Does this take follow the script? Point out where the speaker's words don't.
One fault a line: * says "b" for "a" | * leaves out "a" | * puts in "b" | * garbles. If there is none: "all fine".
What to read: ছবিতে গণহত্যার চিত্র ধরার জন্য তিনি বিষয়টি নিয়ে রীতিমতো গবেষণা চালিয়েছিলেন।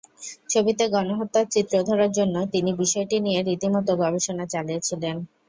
all fine